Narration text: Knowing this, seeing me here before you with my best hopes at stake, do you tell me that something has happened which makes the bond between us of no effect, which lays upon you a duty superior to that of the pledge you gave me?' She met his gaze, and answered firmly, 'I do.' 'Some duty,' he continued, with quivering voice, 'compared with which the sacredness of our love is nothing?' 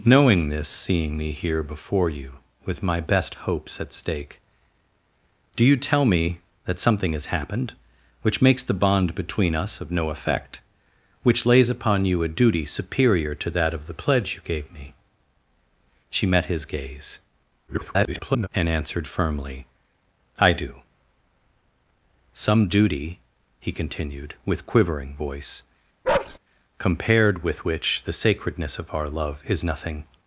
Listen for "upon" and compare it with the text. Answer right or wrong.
right